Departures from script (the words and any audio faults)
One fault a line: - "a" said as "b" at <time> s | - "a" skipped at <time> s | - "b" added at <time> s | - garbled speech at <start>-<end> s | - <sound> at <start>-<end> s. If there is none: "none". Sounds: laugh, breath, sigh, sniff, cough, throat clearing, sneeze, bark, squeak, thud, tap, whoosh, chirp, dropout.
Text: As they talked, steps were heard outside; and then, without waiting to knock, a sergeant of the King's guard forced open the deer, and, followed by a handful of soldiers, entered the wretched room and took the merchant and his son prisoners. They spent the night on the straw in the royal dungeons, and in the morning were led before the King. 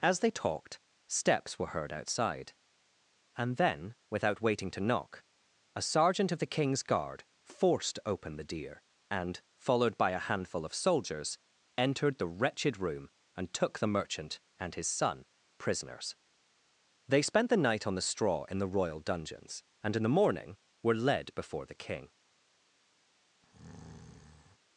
- breath at 23.4-24.6 s